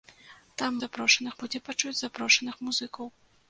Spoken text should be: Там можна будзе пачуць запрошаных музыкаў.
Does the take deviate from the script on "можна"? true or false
true